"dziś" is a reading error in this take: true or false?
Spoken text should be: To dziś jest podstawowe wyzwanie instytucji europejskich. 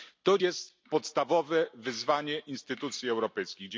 true